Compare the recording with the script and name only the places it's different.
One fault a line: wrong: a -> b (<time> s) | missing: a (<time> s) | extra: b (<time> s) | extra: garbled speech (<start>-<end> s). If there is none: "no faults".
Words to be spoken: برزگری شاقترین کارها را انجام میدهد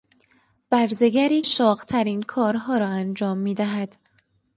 no faults